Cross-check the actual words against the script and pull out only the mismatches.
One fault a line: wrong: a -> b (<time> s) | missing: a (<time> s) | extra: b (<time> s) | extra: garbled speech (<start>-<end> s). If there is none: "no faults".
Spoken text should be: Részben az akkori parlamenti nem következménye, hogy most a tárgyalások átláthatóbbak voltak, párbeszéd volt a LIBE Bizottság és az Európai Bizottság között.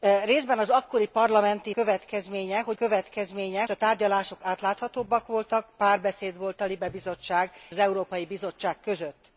missing: nem (1.7 s)
wrong: most -> következménye (2.8 s)
missing: és (7.5 s)